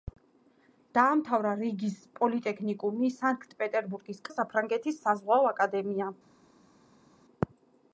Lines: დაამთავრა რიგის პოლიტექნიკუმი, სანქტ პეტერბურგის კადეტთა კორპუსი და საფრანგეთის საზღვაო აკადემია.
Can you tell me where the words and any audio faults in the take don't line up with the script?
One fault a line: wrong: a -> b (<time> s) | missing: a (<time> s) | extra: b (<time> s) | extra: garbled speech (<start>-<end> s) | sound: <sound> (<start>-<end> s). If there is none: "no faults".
missing: კადეტთა კორპუსი (4.2 s)